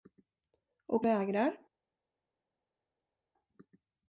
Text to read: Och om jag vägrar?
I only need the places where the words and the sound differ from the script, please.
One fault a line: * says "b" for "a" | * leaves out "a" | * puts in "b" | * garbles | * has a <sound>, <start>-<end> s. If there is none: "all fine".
* leaves out "om jag"